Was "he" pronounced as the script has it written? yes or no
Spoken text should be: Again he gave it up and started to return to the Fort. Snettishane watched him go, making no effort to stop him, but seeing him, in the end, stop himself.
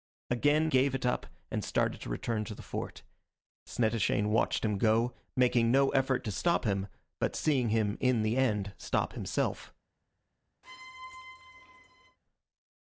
no